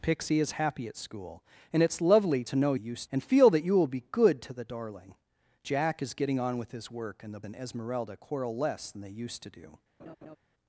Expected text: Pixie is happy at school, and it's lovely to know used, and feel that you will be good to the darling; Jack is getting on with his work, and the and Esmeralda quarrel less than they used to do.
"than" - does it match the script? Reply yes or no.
yes